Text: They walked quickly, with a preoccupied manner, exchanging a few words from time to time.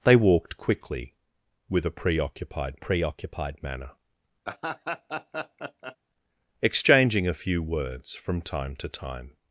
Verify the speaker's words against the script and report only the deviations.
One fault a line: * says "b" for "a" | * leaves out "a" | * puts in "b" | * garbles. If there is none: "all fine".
* puts in "preoccupied"